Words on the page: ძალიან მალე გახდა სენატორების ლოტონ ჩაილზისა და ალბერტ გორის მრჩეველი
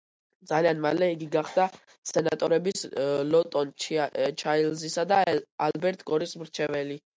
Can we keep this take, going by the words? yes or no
no